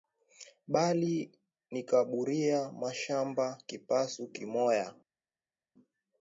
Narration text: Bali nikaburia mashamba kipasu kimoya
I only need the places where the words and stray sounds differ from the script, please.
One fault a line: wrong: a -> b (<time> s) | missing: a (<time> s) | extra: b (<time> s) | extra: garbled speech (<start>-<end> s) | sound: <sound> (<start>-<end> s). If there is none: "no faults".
no faults